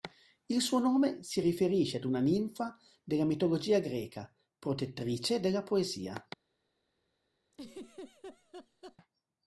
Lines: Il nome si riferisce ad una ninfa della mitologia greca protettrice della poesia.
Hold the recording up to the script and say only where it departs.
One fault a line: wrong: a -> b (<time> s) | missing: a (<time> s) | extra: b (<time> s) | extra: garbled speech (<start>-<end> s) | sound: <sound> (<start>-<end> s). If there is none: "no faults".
extra: suo (0.6 s)
sound: laugh (7.5-9.0 s)